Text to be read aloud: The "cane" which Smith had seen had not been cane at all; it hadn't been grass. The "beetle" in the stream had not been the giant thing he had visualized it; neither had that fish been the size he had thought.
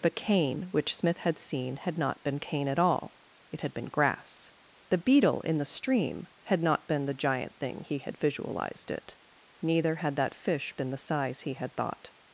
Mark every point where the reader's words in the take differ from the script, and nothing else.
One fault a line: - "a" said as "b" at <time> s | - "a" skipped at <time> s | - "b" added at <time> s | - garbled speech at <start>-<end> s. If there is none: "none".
- "hadn't" said as "had" at 3.6 s